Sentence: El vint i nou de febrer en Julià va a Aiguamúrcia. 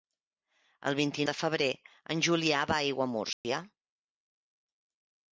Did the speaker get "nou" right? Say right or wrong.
wrong